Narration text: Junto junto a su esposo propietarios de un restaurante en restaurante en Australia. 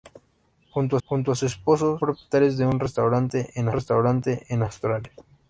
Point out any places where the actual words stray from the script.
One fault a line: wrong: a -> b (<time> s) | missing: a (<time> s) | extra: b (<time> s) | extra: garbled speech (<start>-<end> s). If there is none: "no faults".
no faults